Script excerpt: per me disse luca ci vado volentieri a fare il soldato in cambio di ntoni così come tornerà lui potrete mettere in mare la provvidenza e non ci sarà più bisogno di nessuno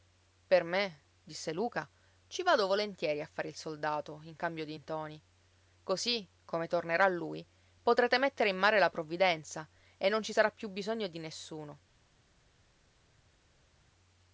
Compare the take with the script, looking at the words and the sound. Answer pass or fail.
pass